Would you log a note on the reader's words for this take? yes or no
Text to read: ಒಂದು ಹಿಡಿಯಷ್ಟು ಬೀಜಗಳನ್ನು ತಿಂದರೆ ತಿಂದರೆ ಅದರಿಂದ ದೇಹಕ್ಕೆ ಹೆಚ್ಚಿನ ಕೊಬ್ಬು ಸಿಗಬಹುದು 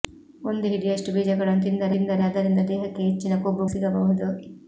no